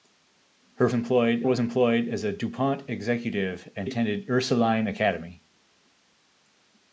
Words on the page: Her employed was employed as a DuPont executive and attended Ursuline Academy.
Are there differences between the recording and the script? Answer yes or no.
no